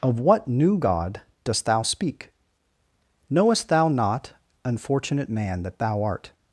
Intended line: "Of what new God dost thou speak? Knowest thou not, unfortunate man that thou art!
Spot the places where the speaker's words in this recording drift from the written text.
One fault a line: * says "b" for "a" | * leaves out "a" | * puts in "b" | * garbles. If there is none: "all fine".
all fine